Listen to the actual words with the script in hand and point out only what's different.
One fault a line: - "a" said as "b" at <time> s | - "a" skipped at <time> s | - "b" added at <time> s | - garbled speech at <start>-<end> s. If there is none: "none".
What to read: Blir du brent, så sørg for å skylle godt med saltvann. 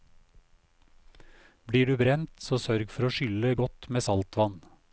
none